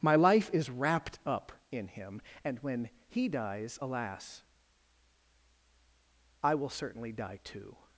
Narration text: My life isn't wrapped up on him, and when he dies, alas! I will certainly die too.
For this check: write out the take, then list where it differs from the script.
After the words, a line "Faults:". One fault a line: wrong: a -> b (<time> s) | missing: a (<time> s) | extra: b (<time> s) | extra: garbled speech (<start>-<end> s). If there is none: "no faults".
My life is wrapped up in him, and when he dies, alas! I will certainly die too.
Faults:
wrong: isn't -> is (0.5 s)
wrong: on -> in (1.7 s)